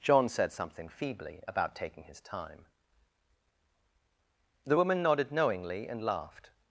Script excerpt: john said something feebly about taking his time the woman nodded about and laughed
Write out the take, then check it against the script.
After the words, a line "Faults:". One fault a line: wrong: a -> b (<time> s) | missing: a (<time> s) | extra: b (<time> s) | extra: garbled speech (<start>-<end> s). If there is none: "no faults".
john said something feebly about taking his time the woman nodded knowingly and laughed
Faults:
wrong: about -> knowingly (5.3 s)